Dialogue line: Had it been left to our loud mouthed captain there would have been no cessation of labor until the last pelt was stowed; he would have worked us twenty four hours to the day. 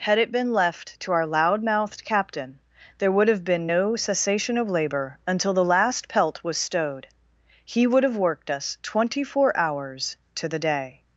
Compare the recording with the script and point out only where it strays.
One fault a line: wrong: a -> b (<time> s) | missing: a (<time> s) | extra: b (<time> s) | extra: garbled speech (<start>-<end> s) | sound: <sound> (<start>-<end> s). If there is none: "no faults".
no faults